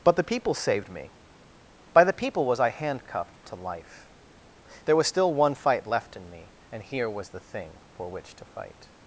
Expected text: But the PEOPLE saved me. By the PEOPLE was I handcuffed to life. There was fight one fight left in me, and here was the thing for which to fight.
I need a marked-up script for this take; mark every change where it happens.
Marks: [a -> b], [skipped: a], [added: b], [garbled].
But the PEOPLE saved me. By the PEOPLE was I handcuffed to life. There was [fight -> still] one fight left in me, and here was the thing for which to fight.